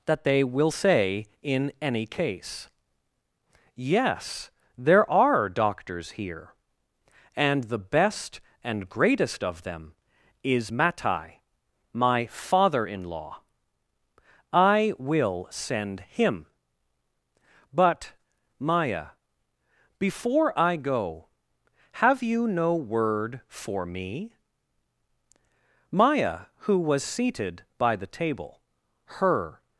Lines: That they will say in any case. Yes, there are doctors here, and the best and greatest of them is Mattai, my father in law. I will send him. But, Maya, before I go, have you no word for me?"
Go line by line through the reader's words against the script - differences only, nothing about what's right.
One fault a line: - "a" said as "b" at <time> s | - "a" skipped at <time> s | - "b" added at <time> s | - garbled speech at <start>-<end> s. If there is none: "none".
- "Maya who was seated by the table her" added at 25.9 s